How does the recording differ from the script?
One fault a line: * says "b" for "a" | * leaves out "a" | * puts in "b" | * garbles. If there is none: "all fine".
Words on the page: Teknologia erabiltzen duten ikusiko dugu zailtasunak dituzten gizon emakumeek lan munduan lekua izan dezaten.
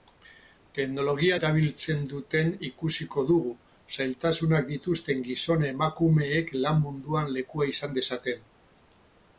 all fine